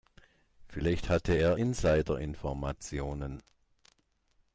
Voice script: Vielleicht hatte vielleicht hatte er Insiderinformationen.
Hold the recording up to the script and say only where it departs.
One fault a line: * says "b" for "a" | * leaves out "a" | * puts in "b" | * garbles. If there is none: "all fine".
* leaves out "vielleicht hatte"